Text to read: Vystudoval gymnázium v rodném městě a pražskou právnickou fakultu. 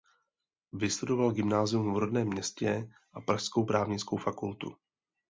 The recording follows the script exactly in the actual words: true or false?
true